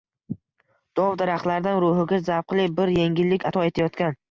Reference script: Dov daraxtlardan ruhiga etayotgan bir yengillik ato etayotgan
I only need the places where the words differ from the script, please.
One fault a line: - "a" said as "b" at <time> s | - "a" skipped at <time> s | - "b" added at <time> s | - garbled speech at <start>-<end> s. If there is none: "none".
- "etayotgan" said as "zavqli" at 2.3 s